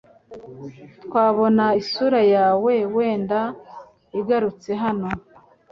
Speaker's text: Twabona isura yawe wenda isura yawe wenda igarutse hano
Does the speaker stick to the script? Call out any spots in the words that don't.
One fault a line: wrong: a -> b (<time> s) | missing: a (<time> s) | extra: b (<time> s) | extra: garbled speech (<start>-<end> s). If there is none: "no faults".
missing: isura yawe wenda (3.4 s)